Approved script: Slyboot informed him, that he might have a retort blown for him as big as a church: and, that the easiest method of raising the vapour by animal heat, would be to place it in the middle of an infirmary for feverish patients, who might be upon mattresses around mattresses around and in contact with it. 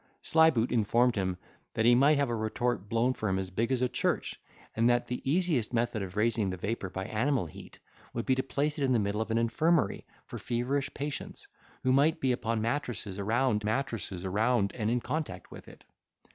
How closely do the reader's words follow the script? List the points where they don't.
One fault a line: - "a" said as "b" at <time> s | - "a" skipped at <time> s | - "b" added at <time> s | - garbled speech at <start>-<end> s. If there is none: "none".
none